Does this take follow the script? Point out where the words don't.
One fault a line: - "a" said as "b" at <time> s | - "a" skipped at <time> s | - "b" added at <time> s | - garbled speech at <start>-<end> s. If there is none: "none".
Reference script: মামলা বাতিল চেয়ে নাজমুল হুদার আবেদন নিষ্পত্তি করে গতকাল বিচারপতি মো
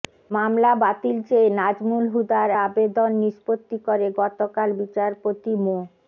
none